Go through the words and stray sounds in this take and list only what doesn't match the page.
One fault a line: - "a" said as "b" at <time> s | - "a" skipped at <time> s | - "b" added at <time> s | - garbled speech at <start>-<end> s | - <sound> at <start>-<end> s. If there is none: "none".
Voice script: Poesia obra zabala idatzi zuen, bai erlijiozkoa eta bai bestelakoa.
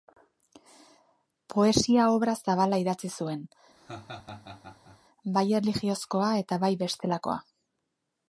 - laugh at 3.8-5.0 s